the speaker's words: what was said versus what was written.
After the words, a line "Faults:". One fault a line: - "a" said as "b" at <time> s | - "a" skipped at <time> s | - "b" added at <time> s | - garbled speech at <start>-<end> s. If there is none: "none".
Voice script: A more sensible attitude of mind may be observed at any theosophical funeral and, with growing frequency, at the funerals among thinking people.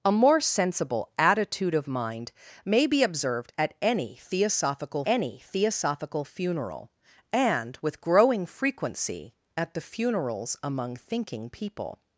A more sensible attitude of mind may be observed at any theosophical any theosophical funeral and, with growing frequency, at the funerals among thinking people.
Faults:
- "any theosophical" added at 5.1 s